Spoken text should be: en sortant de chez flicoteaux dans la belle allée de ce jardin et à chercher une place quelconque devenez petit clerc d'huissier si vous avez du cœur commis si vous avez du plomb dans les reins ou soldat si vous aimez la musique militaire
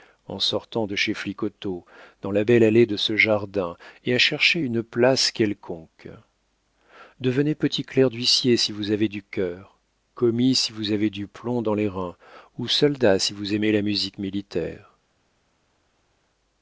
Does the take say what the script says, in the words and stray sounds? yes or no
yes